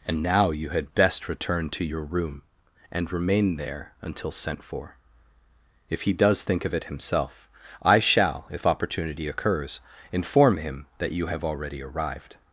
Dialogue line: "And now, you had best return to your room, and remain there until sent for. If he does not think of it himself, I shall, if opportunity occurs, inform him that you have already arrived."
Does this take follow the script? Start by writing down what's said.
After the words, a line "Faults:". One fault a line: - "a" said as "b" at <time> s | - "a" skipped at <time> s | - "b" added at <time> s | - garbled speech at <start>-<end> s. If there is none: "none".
"And now, you had best return to your room, and remain there until sent for. If he does think of it himself, I shall, if opportunity occurs, inform him that you have already arrived."
Faults:
- "not" skipped at 6.4 s